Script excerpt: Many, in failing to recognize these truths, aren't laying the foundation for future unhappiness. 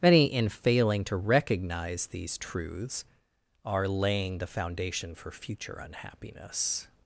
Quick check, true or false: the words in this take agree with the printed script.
false